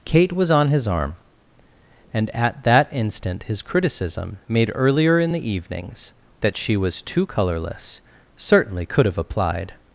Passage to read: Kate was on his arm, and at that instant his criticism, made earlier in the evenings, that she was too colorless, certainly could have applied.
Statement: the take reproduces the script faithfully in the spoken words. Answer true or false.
true